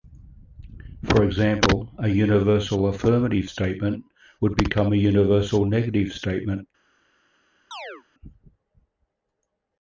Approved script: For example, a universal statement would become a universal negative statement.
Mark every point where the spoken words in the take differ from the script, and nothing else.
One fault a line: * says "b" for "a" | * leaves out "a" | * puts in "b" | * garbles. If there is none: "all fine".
* puts in "affirmative"